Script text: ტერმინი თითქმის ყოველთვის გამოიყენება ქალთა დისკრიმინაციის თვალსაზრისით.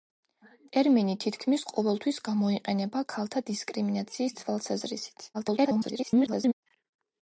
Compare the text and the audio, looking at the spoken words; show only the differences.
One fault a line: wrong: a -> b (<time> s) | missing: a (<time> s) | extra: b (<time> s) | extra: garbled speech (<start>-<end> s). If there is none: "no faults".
extra: garbled speech (5.3-6.5 s)